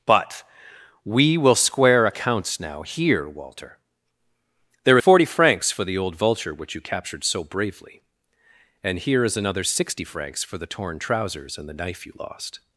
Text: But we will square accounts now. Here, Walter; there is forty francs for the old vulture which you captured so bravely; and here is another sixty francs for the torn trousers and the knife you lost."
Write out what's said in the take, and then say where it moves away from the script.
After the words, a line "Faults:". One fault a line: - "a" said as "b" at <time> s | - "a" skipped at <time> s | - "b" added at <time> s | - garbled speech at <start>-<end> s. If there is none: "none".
But we will square accounts now. Here, Walter; there forty francs for the old vulture which you captured so bravely; and here is another sixty francs for the torn trousers and the knife you lost."
Faults:
- "is" skipped at 5.0 s